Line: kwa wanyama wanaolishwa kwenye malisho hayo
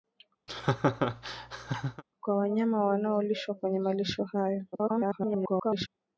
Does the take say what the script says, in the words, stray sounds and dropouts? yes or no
no